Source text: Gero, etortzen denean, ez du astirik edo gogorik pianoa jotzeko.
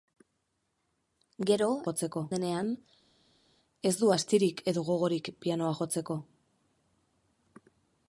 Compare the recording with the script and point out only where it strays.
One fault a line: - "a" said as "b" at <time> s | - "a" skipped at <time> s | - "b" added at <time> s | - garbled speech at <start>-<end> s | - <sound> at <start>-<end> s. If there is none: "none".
- "etortzen" said as "jotzeko" at 1.9 s